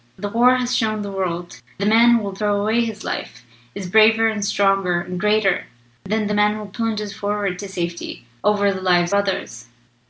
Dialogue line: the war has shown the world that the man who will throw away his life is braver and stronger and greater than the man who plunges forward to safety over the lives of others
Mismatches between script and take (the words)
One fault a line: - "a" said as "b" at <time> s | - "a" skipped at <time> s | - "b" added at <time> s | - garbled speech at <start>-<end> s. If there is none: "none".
- "that" skipped at 1.6 s
- "of" skipped at 9.1 s